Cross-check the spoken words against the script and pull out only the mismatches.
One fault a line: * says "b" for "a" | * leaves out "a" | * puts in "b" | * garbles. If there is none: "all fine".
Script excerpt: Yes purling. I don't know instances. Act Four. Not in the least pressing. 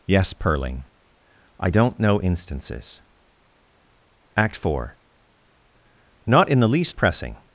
all fine